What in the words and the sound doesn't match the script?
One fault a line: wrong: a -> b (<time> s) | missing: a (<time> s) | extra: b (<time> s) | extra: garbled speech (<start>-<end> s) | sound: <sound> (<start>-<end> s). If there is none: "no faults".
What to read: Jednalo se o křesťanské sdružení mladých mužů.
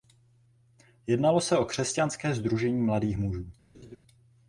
sound: laugh (3.7-4.0 s)